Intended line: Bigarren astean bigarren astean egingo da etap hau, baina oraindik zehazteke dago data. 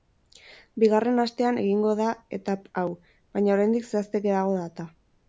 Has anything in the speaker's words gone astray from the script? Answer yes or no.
yes